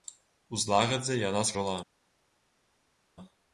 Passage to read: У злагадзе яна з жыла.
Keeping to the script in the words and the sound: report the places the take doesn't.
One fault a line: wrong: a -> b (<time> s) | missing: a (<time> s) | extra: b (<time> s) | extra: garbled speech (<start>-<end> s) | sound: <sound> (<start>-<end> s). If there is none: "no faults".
no faults